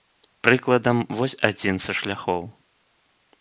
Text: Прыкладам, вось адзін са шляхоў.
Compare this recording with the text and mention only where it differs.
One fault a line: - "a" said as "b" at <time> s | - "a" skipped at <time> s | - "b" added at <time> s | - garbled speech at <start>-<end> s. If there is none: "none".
none